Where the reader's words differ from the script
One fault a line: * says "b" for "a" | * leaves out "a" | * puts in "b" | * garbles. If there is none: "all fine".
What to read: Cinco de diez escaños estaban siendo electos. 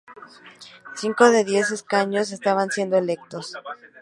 all fine